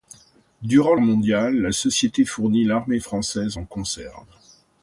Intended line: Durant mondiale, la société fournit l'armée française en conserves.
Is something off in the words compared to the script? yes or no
no